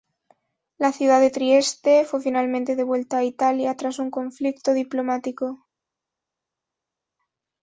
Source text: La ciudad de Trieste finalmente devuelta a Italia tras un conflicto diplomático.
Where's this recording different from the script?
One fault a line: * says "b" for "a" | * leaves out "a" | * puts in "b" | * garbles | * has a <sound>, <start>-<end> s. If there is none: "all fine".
* puts in "fue"